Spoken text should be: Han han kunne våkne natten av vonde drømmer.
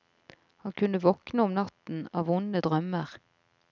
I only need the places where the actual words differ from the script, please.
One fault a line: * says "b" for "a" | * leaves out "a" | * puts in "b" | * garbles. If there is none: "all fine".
* leaves out "han"
* puts in "om"